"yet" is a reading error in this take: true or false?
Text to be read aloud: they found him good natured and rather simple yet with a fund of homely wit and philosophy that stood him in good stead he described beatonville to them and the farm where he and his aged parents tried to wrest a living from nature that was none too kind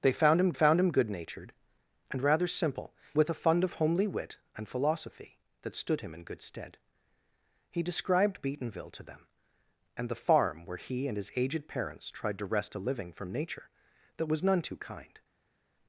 true